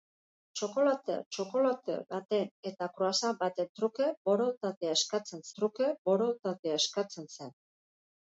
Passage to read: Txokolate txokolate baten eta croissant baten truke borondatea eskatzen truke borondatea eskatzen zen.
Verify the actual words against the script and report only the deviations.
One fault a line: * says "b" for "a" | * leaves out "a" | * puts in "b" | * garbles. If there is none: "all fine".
all fine